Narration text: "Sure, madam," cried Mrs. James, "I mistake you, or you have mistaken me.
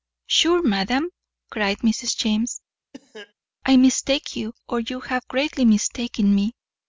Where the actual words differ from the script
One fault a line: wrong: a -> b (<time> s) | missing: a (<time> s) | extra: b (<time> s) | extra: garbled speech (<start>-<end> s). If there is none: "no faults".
extra: greatly (5.3 s)